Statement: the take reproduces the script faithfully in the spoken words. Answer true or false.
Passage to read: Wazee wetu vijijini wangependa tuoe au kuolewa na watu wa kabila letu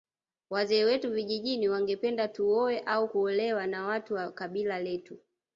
true